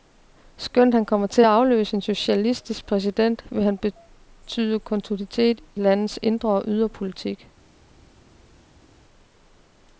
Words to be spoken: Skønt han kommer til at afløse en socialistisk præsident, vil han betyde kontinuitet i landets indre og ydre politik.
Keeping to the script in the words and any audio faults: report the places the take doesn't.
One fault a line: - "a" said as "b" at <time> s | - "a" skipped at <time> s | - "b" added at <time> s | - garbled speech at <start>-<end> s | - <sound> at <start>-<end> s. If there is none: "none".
none